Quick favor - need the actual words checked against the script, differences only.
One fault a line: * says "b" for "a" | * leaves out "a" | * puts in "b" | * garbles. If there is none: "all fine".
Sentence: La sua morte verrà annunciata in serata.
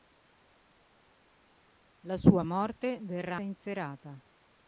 * leaves out "annunciata"